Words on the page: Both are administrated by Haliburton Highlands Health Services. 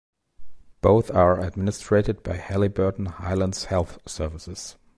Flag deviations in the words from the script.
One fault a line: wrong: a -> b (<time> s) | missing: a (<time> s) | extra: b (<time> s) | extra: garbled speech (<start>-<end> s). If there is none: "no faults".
no faults